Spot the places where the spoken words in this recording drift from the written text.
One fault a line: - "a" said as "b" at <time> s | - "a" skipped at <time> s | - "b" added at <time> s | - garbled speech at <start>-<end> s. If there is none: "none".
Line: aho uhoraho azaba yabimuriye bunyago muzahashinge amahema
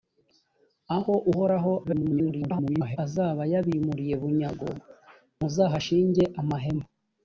- garbled speech at 1.8-3.0 s